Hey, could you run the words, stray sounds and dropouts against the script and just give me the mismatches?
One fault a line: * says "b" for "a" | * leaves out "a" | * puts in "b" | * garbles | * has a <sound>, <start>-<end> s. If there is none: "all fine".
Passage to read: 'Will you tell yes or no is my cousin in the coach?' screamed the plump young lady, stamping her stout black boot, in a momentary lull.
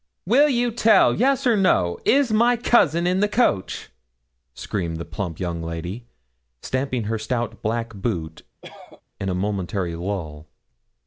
* has a cough, 8.6-9.0 s